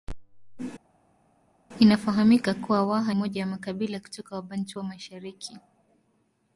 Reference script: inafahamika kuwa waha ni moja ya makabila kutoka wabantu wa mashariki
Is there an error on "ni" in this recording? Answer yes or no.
yes